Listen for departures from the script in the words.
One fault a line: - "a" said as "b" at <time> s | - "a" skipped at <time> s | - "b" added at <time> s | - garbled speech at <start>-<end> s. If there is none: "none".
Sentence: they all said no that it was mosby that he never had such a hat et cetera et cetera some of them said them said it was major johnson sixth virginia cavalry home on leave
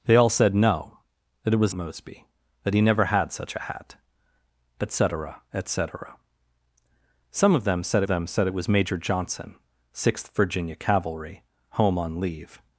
none